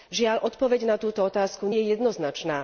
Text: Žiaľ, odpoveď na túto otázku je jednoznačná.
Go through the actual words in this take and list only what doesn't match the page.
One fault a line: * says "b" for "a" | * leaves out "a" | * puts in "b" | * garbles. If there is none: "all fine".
all fine